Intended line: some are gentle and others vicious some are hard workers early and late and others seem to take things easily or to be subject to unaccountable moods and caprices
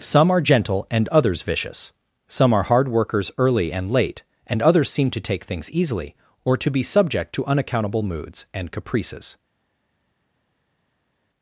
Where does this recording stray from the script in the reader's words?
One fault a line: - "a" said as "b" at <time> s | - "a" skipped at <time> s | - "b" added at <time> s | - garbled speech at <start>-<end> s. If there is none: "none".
none